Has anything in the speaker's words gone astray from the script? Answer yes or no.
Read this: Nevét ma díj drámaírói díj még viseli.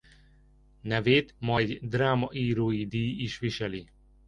yes